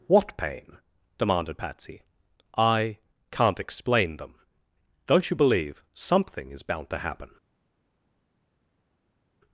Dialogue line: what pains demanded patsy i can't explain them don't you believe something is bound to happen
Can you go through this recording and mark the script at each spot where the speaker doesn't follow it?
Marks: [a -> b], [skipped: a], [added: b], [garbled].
what [pains -> pain] demanded patsy i can't explain them don't you believe something is bound to happen